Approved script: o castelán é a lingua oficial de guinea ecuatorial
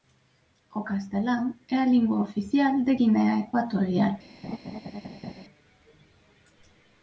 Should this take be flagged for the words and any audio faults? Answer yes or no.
yes